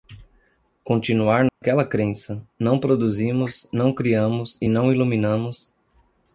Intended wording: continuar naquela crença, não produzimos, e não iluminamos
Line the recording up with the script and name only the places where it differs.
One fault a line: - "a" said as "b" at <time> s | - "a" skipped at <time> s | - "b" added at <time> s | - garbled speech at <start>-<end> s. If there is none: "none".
- "não criamos" added at 3.7 s